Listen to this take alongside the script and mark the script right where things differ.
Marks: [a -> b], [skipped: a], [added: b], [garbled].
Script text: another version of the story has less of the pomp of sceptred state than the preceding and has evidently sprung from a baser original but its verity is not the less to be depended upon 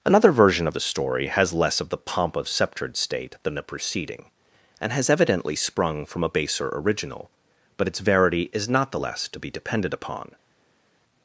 another version of the story has less of the pomp of sceptred state than the preceding and has evidently sprung from a baser original but its verity is not the less to be depended upon